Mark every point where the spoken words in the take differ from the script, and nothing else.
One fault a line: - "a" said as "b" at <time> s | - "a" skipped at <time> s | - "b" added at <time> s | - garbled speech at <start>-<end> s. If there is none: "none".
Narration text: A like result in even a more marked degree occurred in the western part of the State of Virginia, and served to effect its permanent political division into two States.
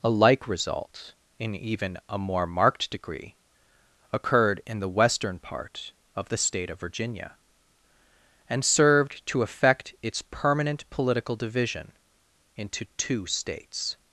none